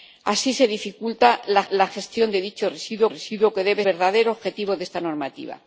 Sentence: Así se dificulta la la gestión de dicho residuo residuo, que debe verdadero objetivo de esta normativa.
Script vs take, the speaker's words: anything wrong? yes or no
no